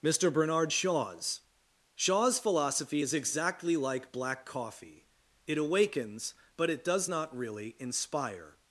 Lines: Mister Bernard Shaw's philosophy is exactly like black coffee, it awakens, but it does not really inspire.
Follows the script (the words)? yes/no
no